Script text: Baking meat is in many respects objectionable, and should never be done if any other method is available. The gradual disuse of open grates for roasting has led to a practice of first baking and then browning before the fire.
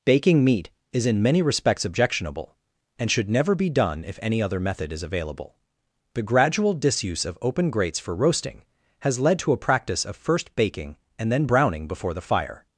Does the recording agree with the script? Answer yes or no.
yes